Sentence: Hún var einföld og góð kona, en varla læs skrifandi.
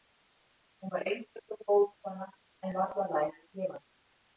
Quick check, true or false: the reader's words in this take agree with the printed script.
true